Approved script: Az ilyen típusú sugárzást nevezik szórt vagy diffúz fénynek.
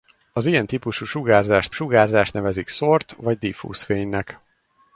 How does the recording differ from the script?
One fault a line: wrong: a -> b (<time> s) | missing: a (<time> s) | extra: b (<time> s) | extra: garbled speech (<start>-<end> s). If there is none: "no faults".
extra: sugárzást (1.7 s)